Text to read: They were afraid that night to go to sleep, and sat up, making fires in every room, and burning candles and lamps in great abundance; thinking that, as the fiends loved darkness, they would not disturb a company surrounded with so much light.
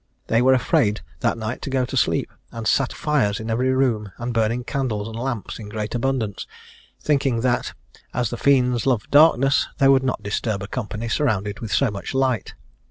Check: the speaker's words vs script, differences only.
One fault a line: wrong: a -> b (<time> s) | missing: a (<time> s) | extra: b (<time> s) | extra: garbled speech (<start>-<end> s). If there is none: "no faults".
missing: up making (3.0 s)